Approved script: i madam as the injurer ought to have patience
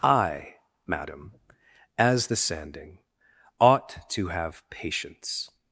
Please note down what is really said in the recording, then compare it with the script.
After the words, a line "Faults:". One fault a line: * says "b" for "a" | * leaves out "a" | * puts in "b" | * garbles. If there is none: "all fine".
i madam as the sanding ought to have patience
Faults:
* says "sanding" for "injurer"